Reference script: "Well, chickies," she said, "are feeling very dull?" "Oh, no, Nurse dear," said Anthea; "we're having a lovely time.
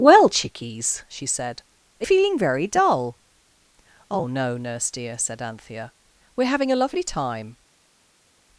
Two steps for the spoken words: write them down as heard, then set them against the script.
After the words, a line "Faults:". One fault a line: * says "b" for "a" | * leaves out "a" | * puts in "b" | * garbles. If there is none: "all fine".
"Well, chickies," she said, "are feeling very dull?" "Oh, no, Nurse dear," said Anthea; "we're having a lovely time.
Faults:
all fine